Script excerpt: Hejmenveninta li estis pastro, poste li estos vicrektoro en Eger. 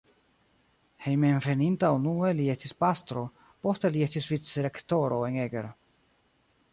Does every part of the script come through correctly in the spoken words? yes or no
no